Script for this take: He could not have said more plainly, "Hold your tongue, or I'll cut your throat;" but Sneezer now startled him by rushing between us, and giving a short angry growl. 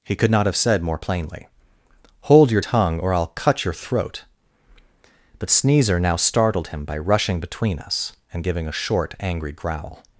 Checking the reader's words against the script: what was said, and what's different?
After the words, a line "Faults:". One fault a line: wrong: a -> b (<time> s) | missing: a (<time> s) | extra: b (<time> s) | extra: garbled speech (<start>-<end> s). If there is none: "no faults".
He could not have said more plainly, "Hold your tongue, or I'll cut your throat;" but Sneezer now startled him by rushing between us, and giving a short angry growl.
Faults:
no faults